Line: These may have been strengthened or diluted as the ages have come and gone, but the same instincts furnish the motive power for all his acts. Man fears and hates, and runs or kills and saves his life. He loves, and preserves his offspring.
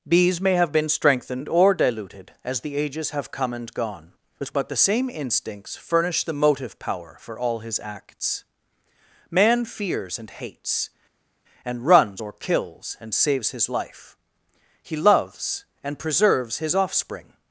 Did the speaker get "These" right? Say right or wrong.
wrong